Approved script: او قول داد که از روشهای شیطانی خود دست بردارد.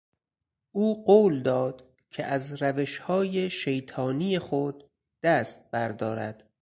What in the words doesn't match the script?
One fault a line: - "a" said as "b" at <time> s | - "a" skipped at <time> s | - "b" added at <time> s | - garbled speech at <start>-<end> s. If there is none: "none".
none